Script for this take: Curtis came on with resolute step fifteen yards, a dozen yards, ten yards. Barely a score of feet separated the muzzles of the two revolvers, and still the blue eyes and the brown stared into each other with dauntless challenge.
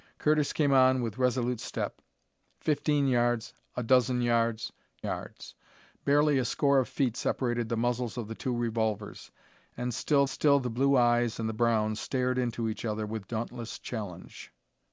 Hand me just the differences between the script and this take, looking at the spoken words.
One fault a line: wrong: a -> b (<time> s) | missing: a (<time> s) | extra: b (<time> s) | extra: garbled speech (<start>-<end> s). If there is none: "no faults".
missing: ten (4.7 s)
extra: still (10.3 s)